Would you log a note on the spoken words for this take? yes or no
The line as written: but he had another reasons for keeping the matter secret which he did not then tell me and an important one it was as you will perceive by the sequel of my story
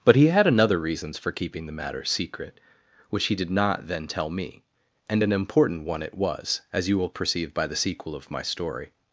no